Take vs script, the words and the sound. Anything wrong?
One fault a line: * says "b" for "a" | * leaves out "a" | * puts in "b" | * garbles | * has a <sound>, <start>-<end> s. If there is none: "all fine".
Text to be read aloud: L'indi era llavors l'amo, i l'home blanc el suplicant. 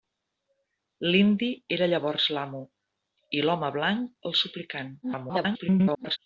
* garbles